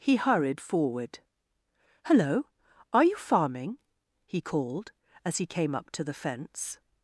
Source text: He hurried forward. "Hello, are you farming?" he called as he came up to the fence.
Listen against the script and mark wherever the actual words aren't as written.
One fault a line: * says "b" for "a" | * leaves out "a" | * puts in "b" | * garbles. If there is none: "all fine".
all fine